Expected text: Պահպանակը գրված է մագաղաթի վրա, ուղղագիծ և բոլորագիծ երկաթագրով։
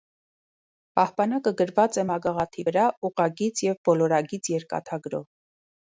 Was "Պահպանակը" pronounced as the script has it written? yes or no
yes